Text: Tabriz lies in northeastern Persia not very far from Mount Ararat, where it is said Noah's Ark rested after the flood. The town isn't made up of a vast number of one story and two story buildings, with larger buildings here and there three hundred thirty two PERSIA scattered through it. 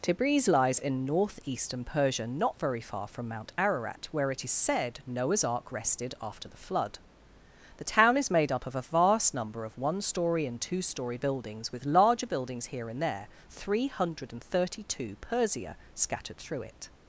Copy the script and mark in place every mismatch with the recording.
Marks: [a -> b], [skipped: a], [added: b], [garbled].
Tabriz lies in northeastern Persia not very far from Mount Ararat, where it is said Noah's Ark rested after the flood. The town [isn't -> is] made up of a vast number of one story and two story buildings, with larger buildings here and there three hundred thirty two PERSIA scattered through it.